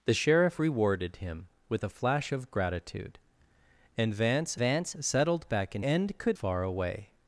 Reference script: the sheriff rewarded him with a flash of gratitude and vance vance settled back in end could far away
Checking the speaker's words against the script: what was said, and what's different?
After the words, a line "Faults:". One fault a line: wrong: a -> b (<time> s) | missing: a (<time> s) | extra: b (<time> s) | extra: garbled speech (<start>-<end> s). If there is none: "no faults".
the sheriff rewarded him with a flash of gratitude and vance vance settled back in end could far away
Faults:
no faults